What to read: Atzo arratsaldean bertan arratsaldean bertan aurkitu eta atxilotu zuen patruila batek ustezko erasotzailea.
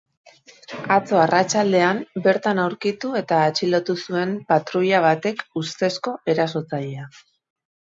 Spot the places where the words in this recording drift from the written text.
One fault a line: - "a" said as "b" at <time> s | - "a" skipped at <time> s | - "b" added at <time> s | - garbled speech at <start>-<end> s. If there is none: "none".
- "arratsaldean bertan" skipped at 2.6 s